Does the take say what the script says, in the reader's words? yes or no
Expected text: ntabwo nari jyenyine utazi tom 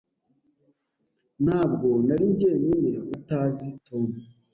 yes